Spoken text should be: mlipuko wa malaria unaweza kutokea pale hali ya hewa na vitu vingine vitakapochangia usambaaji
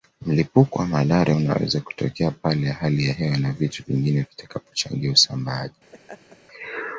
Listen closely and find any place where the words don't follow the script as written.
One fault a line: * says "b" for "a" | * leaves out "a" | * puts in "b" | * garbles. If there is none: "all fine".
all fine